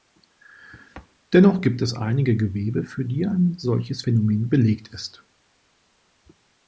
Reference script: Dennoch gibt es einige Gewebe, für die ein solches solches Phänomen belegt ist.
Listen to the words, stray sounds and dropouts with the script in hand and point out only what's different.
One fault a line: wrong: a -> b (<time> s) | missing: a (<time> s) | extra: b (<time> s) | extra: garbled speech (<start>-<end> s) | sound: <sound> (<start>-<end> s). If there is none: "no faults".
missing: solches (4.0 s)